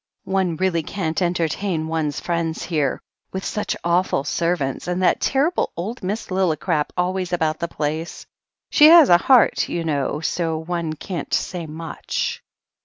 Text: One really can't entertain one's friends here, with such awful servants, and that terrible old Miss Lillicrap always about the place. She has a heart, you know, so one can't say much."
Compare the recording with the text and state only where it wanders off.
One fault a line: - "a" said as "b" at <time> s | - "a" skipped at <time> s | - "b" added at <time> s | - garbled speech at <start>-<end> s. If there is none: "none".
none